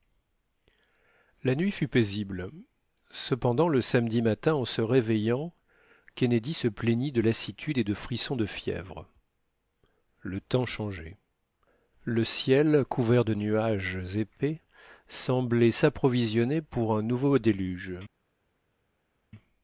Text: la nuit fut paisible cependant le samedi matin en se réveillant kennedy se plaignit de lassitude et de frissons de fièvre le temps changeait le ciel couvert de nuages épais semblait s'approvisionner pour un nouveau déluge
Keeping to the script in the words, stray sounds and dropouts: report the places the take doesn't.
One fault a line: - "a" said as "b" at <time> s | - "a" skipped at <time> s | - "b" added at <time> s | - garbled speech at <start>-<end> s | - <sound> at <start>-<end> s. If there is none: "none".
none